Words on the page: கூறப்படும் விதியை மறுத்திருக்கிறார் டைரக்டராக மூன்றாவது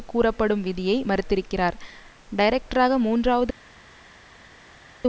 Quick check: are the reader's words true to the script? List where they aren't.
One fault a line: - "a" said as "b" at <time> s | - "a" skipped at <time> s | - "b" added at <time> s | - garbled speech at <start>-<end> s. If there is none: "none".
none